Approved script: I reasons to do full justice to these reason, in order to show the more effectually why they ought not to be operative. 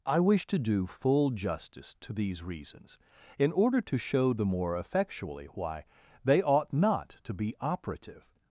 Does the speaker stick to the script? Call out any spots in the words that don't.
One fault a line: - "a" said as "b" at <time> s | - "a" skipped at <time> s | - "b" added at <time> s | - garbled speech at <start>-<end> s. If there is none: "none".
- "reasons" said as "wish" at 0.2 s
- "reason" said as "reasons" at 2.4 s